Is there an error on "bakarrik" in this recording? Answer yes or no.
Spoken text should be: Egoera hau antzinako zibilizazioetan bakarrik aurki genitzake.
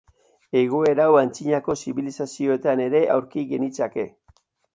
yes